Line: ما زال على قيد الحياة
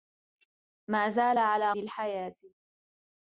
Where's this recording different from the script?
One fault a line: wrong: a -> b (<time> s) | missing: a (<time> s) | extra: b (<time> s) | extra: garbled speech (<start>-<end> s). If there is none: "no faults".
missing: قيد (1.7 s)